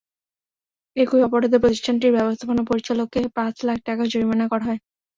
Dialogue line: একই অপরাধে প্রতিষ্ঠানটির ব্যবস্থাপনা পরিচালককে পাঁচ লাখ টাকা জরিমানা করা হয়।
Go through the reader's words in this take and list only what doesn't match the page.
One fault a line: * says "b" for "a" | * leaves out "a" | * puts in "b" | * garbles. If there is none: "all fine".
all fine